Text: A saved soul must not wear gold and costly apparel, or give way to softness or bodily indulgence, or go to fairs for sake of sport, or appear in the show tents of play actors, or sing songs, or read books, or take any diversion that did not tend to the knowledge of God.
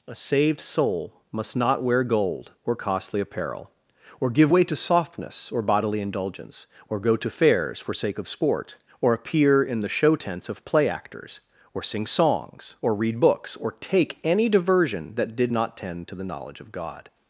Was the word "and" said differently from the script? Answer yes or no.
yes